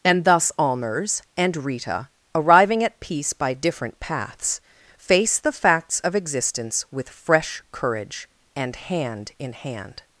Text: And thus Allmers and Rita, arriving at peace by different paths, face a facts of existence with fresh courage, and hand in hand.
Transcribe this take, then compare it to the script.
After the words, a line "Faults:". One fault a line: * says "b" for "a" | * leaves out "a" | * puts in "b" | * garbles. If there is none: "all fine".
And thus Allmers and Rita, arriving at peace by different paths, face the facts of existence with fresh courage, and hand in hand.
Faults:
* says "the" for "a"